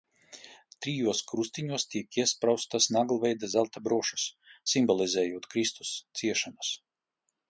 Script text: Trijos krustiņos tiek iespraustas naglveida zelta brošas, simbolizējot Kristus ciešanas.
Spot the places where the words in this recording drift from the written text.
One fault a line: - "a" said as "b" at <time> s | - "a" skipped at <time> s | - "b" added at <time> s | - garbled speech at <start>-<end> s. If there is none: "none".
none